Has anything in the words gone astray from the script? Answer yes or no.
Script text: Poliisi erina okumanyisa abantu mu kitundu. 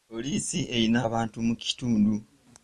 yes